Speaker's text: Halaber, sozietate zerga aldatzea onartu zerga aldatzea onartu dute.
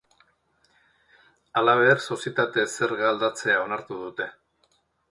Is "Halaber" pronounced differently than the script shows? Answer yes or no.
no